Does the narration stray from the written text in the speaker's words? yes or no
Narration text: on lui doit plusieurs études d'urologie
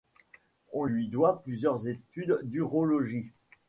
no